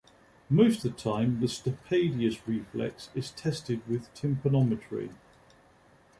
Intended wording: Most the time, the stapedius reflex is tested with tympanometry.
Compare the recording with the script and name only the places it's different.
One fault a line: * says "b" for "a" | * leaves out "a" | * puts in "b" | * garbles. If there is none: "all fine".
all fine